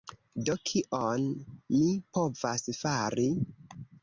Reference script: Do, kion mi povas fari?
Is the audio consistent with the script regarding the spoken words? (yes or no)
yes